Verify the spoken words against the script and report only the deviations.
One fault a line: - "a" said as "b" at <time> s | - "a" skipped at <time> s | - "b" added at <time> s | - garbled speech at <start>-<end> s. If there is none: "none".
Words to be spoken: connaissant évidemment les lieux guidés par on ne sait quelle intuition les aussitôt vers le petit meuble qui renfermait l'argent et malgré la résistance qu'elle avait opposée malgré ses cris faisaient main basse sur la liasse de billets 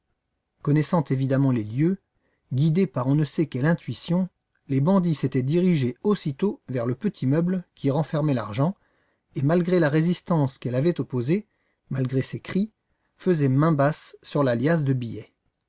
- "bandits s'étaient dirigés" added at 4.8 s